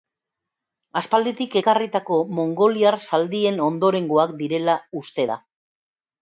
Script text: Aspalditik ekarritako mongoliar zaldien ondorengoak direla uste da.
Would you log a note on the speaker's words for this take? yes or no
no